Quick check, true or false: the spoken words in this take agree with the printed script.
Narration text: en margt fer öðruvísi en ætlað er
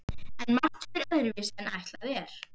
true